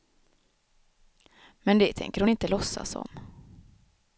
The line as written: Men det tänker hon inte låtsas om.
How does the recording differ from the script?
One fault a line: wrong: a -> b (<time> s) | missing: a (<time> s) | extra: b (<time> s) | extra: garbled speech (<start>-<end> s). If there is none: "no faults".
no faults